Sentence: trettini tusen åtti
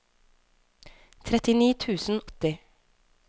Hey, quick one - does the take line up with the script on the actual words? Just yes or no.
yes